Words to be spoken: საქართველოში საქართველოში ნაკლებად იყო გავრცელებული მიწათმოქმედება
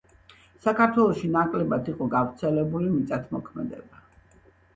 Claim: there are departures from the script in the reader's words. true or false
true